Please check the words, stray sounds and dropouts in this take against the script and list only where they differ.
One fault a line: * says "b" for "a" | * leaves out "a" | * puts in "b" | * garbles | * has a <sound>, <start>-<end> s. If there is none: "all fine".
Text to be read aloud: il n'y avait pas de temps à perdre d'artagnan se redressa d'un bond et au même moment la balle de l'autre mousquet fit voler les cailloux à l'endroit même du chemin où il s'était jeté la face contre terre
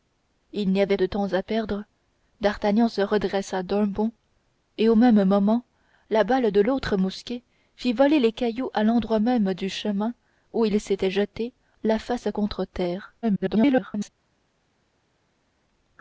* leaves out "pas"
* garbles